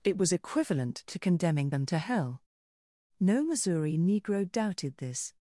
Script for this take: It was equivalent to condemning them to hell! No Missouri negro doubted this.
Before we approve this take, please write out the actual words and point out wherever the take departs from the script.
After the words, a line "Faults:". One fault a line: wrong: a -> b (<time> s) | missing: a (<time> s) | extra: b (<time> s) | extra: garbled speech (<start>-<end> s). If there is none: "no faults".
It was equivalent to condemning them to hell! No Missouri negro doubted this.
Faults:
no faults